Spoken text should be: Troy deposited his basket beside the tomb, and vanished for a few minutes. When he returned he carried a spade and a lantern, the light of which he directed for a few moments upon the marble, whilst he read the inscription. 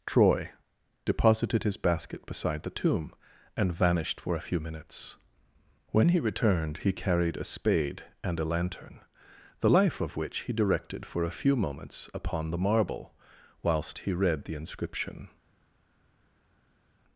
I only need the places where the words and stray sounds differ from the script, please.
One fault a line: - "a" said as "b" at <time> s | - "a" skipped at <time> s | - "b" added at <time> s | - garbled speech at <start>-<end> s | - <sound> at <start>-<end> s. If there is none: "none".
- "light" said as "life" at 9.7 s